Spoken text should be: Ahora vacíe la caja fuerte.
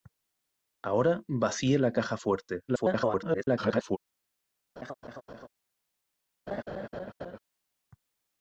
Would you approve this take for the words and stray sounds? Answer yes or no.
no